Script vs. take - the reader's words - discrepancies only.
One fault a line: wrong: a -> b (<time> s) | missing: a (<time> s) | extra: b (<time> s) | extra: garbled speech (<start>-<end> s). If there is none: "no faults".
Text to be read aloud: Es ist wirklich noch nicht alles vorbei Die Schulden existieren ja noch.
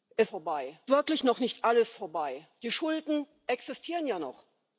wrong: ist -> vorbei (0.2 s)